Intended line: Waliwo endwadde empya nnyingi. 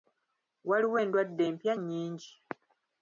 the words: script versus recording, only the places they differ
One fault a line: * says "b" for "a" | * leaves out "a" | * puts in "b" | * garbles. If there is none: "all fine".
all fine